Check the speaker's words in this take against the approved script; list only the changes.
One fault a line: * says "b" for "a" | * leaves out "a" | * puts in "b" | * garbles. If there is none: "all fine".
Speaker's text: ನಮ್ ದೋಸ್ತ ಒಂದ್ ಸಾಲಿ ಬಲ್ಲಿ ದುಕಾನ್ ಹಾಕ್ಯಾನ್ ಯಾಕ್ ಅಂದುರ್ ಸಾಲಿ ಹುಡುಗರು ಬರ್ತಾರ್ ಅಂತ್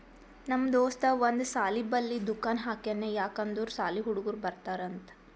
all fine